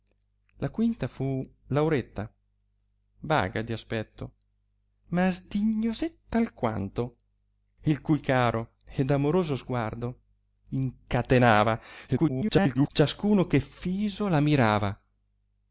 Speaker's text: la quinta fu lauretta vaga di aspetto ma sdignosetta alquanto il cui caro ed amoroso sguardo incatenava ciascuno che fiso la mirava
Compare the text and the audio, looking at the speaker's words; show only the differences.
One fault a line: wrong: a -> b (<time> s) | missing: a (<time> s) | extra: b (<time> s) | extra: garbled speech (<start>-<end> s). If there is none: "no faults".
extra: garbled speech (12.1-12.9 s)